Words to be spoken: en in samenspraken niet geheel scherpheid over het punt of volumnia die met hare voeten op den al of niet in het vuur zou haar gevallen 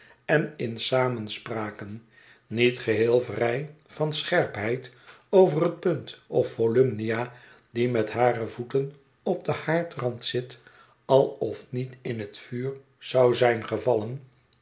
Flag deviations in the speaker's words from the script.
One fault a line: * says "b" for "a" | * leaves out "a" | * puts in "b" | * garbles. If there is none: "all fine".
* puts in "vrij van"
* puts in "haardrand zit"
* says "zijn" for "haar"